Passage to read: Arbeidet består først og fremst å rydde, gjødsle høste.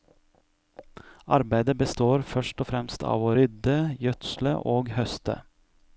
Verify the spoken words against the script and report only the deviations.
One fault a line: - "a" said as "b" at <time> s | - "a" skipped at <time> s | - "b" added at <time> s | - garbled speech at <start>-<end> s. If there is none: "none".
- "av" added at 3.1 s
- "og" added at 4.8 s